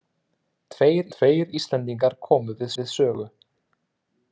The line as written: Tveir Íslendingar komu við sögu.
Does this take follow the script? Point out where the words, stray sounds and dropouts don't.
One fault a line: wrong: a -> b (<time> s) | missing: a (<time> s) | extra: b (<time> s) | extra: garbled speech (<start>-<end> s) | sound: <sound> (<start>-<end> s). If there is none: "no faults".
extra: tveir (1.2 s)
extra: við (2.8 s)